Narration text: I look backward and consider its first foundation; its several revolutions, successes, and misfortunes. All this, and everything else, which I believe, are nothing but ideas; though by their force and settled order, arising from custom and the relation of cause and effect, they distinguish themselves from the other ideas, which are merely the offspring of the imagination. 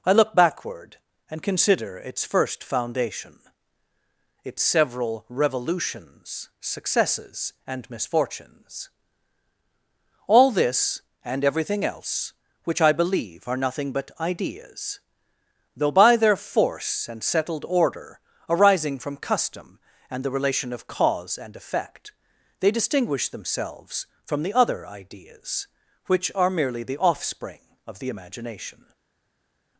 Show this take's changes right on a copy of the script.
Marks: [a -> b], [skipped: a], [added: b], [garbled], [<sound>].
I look backward and consider its first foundation; its several revolutions, successes, and misfortunes. All this, and everything else, which I believe, are nothing but ideas; though by their force and settled order, arising from custom and the relation of cause and effect, they distinguish themselves from the other ideas, which are merely the offspring of the imagination.